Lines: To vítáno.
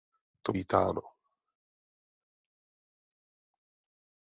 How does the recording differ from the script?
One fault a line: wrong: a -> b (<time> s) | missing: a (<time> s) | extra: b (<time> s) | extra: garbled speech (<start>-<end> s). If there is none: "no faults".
no faults